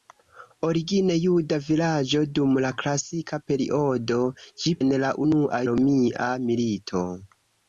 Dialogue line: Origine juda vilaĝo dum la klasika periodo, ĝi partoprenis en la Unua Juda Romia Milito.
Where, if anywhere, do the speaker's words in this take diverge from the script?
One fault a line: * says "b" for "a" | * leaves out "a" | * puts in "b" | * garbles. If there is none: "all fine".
* leaves out "partoprenis"
* leaves out "Juda"